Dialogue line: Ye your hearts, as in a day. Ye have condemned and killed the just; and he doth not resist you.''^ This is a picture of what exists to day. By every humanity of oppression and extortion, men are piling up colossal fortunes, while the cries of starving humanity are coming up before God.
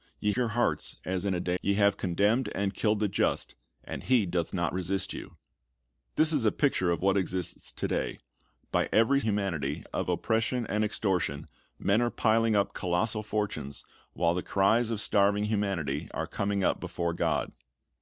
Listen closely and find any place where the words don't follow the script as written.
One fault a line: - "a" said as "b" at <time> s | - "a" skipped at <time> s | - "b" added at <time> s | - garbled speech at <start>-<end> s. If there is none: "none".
none